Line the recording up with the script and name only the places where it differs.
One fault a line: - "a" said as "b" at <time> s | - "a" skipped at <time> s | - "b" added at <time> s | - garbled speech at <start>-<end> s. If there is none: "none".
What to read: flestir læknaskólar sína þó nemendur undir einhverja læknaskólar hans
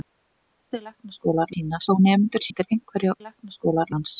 none